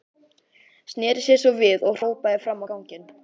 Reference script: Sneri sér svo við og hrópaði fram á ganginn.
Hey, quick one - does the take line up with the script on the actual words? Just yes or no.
yes